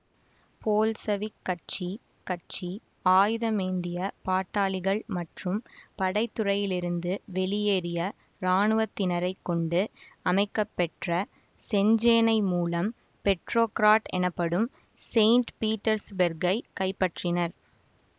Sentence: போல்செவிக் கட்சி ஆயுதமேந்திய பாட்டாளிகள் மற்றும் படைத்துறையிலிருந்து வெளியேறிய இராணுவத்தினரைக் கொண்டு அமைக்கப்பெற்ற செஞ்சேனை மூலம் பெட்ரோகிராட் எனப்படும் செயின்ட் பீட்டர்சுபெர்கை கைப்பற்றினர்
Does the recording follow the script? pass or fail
fail